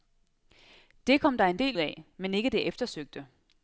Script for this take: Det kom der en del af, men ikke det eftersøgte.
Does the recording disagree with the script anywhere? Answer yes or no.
no